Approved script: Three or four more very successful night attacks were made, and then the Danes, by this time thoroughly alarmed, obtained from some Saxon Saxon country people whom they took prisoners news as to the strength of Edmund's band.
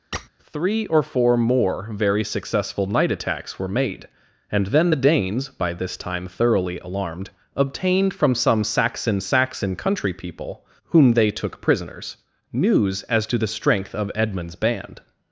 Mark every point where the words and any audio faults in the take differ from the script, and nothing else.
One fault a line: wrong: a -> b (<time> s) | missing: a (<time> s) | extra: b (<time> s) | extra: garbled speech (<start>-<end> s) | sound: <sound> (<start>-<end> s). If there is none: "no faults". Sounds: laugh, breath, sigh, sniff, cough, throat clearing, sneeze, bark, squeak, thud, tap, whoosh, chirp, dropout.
sound: squeak (0.1-0.3 s)